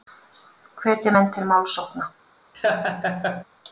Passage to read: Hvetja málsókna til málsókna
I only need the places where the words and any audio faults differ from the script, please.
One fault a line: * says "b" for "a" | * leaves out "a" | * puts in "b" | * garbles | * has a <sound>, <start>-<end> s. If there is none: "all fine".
* says "menn" for "málsókna"
* has a laugh, 2.5-3.4 s